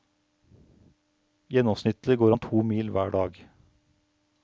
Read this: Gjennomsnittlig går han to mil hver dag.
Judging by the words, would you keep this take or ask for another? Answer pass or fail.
pass